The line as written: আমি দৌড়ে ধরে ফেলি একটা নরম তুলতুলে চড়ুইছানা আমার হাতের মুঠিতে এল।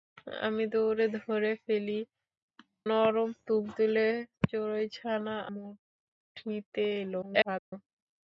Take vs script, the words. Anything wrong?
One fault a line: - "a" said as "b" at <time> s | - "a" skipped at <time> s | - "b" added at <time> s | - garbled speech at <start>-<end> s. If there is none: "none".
- "একটা" skipped at 2.0 s
- "আমার হাতের" skipped at 5.4 s
- garbled speech at 7.2-7.7 s